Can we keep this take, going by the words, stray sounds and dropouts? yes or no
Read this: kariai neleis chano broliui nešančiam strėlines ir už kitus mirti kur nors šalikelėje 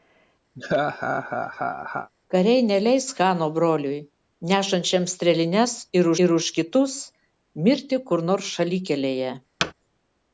no